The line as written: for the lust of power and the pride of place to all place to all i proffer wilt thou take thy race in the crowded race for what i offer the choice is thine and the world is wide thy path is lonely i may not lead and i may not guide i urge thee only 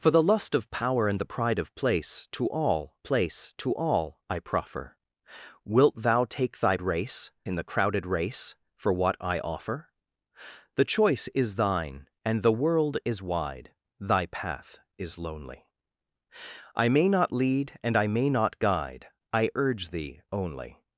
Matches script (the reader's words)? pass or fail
pass